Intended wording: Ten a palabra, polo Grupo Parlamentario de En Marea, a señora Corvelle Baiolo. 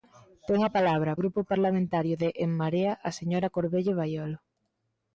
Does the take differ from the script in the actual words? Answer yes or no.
yes